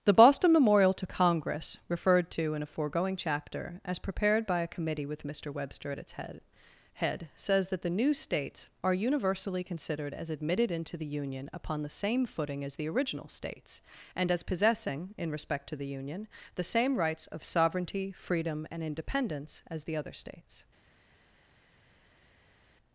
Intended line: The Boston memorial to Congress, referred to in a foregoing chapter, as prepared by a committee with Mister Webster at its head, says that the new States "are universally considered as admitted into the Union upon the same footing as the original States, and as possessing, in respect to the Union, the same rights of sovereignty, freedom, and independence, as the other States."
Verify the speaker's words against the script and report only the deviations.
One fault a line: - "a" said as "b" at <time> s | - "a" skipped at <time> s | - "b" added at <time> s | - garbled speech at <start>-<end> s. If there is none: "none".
- "head" added at 6.9 s